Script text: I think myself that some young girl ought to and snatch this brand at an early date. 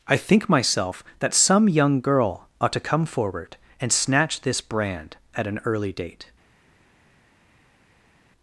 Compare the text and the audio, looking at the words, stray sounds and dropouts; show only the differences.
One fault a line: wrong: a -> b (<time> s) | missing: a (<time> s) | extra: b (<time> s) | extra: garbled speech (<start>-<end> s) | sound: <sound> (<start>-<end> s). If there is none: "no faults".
extra: come forward (2.8 s)